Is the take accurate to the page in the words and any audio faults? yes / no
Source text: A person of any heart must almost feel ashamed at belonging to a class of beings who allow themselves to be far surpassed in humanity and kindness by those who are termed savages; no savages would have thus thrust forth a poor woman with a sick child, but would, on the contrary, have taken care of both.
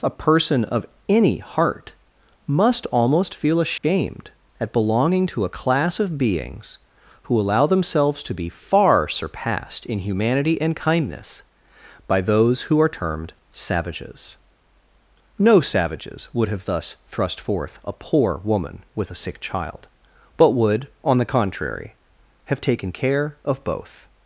no